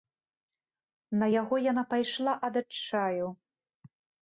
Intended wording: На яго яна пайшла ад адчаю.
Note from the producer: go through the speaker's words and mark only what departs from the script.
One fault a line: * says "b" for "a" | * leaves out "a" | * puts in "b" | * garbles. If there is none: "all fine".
all fine